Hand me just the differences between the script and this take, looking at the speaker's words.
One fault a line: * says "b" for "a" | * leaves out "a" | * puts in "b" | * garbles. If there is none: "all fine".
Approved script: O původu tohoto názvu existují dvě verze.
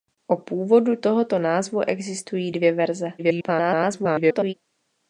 * garbles